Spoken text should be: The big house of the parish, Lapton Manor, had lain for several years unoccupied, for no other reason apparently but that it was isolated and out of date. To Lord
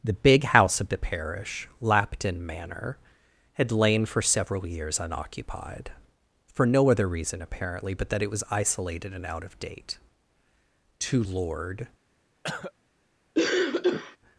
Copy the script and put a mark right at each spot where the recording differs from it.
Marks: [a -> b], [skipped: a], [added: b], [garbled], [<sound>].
The big house of the parish, Lapton Manor, had lain for several years unoccupied, for no other reason apparently but that it was isolated and out of date. To Lord [cough] [cough]